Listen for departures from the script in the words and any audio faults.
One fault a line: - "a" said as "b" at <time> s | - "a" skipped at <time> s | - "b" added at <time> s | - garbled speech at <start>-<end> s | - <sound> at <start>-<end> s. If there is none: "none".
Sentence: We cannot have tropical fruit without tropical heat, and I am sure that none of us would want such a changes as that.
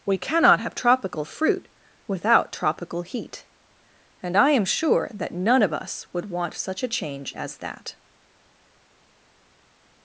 - "changes" said as "change" at 6.9 s